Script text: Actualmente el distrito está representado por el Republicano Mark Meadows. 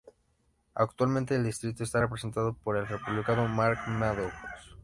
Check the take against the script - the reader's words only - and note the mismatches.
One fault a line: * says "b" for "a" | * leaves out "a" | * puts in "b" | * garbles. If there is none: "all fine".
all fine